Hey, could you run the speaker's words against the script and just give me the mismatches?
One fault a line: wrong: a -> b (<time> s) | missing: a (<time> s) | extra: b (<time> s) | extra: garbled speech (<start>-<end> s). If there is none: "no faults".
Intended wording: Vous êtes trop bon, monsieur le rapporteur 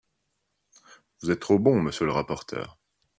no faults